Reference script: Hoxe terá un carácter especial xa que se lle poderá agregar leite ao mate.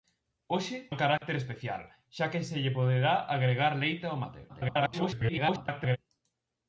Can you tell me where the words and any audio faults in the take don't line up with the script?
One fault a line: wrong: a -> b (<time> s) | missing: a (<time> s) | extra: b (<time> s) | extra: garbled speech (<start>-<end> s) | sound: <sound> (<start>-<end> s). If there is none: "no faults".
missing: terá (0.8 s)
sound: dropout (1.2-1.2 s)
extra: garbled speech (4.5-6.0 s)